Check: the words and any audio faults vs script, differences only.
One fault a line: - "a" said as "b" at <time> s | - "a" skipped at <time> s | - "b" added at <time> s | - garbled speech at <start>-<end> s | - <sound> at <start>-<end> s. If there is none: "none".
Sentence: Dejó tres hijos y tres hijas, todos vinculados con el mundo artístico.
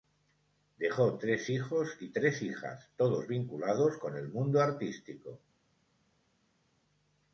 none